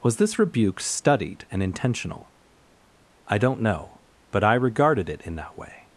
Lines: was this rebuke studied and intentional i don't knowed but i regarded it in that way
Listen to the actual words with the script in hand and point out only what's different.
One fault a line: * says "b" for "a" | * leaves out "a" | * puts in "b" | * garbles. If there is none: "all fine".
* says "know" for "knowed"